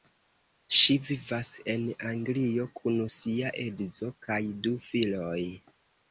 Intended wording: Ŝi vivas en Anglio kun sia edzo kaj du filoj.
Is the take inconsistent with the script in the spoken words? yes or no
no